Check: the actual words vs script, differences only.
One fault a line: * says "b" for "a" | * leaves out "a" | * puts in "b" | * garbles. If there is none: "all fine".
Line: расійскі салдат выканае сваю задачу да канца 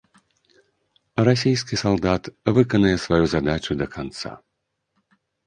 all fine